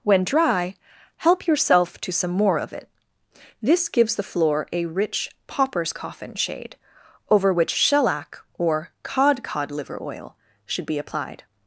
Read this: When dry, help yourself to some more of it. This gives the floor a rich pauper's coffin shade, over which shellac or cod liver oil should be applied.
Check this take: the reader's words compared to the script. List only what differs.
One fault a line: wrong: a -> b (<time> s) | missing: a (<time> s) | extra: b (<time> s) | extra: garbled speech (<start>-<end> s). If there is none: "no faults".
extra: cod (9.4 s)